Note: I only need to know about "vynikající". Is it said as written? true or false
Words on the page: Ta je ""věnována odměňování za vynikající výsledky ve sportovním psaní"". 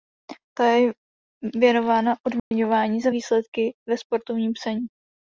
false